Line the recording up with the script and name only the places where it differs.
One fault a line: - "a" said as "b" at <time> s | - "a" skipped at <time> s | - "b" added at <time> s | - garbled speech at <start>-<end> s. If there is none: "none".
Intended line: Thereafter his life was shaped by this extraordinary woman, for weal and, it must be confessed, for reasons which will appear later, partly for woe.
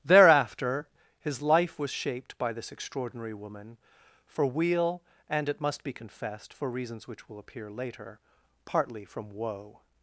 - "for" said as "from" at 9.0 s